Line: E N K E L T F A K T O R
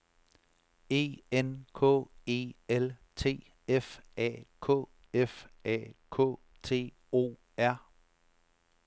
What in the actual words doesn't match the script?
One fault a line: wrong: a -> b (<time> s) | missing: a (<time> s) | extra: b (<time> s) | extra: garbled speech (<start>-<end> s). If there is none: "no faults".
extra: F A K (5.1 s)